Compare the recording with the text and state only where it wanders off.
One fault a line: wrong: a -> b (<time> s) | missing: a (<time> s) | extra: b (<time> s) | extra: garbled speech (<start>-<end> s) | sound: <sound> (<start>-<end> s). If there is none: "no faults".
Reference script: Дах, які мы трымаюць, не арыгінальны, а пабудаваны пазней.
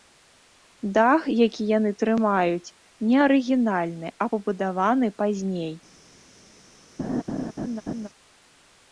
wrong: мы -> яны (1.8 s)
sound: laugh (7.0-8.1 s)